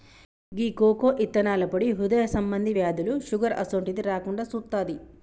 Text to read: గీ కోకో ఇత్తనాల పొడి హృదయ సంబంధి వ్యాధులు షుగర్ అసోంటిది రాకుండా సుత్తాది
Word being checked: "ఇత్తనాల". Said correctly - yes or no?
yes